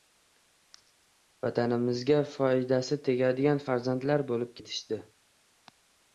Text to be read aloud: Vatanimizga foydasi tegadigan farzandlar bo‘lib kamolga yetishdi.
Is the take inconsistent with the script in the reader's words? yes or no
yes